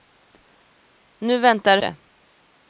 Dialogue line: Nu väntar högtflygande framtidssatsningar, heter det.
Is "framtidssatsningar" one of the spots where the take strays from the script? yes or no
yes